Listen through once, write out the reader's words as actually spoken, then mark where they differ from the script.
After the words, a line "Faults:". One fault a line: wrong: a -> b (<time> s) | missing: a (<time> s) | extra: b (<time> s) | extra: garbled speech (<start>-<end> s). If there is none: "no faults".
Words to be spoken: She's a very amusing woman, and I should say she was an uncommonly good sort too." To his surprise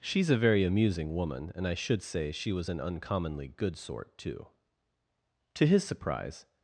She's a very amusing woman, and I should say she was an uncommonly good sort too." To his surprise
Faults:
no faults